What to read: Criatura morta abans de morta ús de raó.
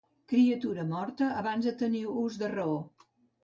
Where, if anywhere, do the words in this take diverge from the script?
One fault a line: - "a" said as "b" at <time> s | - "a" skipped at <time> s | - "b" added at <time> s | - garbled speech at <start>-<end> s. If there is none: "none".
- "morta" said as "tenir" at 1.9 s